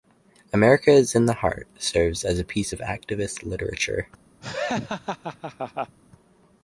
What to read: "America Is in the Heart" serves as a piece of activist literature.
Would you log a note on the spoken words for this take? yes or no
no